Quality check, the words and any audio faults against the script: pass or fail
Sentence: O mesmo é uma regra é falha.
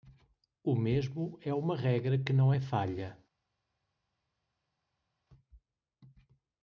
fail